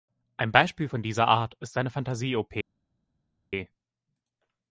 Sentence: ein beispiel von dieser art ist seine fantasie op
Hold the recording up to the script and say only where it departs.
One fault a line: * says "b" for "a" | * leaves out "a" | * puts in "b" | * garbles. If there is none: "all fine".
all fine